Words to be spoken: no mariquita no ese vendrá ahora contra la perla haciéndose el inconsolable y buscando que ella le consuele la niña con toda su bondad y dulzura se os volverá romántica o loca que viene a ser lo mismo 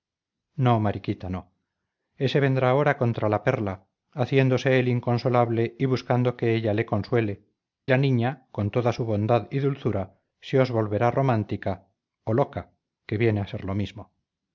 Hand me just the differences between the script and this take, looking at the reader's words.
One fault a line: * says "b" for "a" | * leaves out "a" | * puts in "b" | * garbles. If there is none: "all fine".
all fine